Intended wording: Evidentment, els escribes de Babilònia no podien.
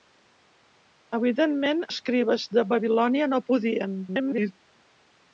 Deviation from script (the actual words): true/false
true